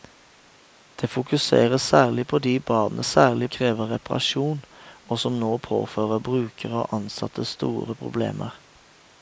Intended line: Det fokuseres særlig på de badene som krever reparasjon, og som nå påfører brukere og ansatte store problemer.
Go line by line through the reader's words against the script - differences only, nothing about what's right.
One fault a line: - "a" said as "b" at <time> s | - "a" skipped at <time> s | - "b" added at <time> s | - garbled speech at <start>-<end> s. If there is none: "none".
- "som" said as "særlig" at 3.0 s